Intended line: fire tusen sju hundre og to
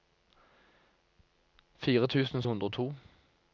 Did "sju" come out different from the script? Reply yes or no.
yes